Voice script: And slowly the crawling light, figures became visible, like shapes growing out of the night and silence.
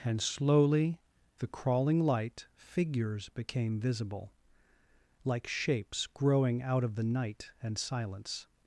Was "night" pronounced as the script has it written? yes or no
yes